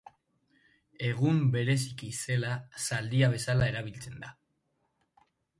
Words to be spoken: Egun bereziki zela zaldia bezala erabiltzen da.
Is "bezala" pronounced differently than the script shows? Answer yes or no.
no